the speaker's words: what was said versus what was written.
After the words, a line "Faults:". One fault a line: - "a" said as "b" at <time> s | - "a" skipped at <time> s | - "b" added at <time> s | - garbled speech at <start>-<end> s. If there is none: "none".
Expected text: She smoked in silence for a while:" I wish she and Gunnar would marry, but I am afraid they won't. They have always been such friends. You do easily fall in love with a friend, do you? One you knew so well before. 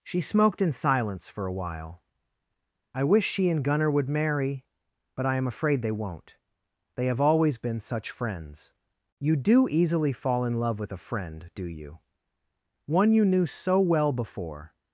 She smoked in silence for a while:" I wish she and Gunnar would marry, but I am afraid they won't. They have always been such friends. You do easily fall in love with a friend, do you? One you knew so well before.
Faults:
none